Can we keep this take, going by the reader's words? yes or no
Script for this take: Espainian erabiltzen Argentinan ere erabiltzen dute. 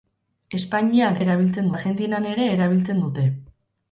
yes